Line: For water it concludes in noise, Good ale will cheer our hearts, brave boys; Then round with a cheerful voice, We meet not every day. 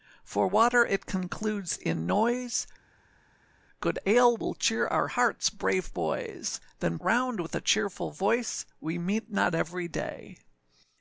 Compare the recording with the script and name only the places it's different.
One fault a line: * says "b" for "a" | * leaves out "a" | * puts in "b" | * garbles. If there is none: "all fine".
all fine